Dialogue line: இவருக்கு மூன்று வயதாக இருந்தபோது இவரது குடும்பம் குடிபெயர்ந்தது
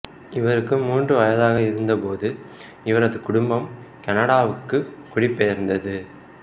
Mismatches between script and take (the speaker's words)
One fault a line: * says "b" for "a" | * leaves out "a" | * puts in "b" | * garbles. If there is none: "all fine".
* puts in "கனடாவுக்கு"